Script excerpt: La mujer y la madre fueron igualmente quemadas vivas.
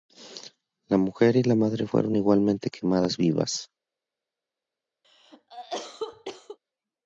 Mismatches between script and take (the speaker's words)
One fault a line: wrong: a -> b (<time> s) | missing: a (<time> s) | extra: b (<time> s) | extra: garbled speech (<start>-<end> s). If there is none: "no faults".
no faults